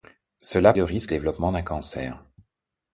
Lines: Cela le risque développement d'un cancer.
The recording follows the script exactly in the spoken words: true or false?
true